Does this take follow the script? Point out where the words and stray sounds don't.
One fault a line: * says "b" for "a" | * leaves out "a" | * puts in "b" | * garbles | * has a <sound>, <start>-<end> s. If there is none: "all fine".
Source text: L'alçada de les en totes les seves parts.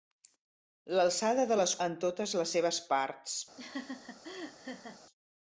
* has a laugh, 3.6-5.0 s